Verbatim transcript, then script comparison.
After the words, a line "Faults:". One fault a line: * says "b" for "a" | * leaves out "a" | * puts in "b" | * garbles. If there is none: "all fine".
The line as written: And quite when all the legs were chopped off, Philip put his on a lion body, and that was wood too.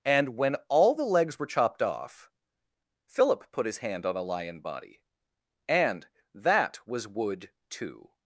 And when all the legs were chopped off, Philip put his hand on a lion body, and that was wood too.
Faults:
* leaves out "quite"
* puts in "hand"